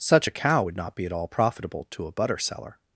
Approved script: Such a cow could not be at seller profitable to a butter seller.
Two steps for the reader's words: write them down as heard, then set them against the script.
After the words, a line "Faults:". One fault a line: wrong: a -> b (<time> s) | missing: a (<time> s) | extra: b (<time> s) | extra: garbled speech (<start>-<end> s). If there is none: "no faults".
Such a cow would not be at all profitable to a butter seller.
Faults:
wrong: could -> would (0.6 s)
wrong: seller -> all (1.1 s)